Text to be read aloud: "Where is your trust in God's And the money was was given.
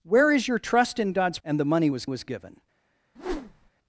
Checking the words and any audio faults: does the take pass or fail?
fail